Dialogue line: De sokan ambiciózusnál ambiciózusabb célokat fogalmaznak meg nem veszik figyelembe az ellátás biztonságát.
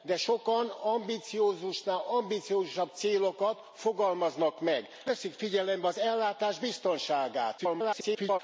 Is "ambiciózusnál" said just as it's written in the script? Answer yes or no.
yes